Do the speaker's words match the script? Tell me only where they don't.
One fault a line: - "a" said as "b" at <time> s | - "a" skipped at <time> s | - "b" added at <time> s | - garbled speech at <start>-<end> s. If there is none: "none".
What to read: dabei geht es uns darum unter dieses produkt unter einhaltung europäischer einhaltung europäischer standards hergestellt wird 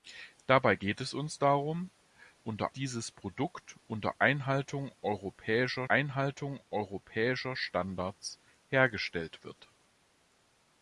none